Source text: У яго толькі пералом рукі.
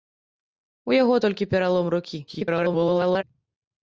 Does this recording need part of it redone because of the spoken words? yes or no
yes